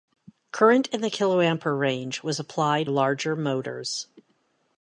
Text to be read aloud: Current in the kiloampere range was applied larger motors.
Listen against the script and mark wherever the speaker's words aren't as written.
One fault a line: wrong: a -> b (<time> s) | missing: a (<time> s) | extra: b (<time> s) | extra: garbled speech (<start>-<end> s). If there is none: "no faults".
no faults